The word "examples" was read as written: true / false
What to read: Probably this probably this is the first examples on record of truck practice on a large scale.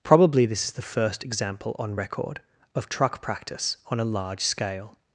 false